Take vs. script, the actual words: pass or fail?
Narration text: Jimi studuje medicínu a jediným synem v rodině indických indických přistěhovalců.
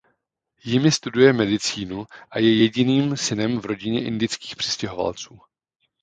fail